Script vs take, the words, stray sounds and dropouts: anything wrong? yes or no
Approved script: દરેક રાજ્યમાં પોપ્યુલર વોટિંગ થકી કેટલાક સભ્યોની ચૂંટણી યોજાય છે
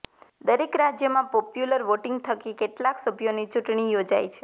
no